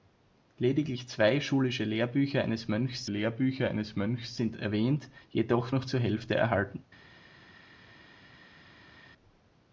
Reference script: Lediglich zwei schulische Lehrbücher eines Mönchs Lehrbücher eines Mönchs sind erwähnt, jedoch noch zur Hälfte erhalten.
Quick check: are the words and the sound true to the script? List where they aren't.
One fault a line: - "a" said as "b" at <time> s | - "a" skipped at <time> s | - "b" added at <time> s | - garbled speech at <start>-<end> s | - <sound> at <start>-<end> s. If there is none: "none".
none